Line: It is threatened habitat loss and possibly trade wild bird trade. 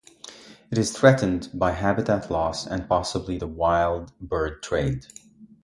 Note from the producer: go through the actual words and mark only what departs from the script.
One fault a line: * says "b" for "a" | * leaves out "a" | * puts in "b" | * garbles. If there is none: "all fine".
* puts in "by"
* says "the" for "trade"